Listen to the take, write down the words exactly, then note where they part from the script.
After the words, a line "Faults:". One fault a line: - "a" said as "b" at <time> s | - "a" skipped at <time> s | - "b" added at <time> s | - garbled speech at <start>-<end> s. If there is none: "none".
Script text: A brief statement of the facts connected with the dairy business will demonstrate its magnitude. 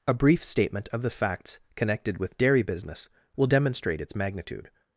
A brief statement of the facts connected with dairy business will demonstrate its magnitude.
Faults:
- "the" skipped at 2.4 s